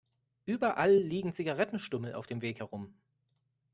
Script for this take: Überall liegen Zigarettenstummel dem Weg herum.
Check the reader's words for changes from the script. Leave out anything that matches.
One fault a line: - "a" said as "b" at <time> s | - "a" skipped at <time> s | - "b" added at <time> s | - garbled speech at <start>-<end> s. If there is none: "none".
- "auf" added at 2.1 s